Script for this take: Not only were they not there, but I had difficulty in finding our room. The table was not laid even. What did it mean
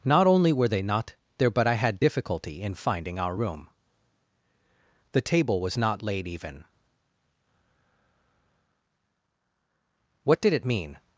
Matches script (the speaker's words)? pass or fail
pass